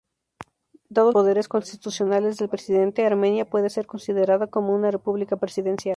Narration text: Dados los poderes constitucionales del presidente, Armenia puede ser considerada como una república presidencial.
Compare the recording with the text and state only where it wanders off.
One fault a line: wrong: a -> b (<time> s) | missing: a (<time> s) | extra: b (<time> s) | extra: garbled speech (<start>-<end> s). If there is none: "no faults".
missing: los (1.1 s)